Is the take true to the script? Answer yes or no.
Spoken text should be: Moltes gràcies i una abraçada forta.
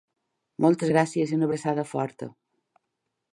yes